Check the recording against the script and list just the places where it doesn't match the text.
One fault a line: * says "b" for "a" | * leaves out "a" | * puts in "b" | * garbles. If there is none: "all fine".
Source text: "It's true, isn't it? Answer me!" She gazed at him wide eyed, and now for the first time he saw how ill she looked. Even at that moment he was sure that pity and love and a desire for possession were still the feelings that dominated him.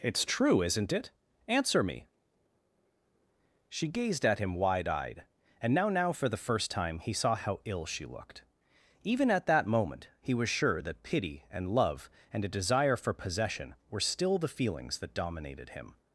* puts in "now"